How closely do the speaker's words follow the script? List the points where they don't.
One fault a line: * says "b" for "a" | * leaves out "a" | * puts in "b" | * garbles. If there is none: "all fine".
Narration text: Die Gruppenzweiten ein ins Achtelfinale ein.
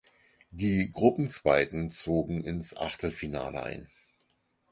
* says "zogen" for "ein"